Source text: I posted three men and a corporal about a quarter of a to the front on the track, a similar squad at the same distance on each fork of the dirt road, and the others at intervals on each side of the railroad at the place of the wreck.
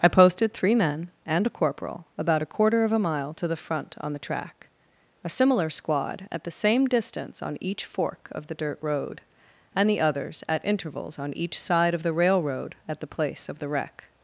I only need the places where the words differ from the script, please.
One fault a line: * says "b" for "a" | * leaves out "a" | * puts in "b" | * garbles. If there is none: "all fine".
* puts in "mile"